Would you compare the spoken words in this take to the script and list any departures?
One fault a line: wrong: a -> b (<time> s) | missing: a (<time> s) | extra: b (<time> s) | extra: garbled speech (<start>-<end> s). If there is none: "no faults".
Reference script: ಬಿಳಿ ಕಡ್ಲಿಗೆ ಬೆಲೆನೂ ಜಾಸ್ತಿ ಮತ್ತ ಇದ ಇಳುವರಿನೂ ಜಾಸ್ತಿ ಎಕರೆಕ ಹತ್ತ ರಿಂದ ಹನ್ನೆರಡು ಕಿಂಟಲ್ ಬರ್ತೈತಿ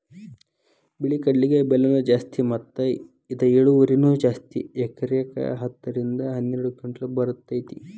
no faults